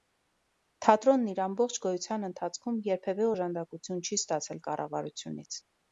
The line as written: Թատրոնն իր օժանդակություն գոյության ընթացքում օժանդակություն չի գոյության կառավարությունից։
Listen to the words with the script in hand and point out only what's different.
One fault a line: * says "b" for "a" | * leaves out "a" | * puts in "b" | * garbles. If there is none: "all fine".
* says "ամբողջ" for "օժանդակություն"
* puts in "երբևէ"
* says "ստացել" for "գոյության"